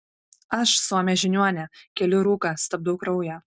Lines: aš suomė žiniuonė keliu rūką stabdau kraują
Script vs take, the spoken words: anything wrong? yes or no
no